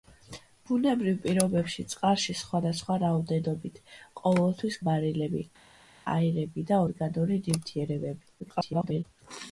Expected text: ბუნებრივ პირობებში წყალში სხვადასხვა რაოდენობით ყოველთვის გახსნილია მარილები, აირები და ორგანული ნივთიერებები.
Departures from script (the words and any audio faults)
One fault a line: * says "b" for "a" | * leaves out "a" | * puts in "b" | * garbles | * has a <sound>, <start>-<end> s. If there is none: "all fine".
* leaves out "გახსნილია"
* garbles